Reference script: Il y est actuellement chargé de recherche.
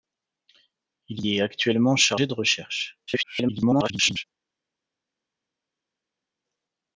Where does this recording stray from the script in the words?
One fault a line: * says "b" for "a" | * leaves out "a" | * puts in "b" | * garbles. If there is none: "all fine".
* garbles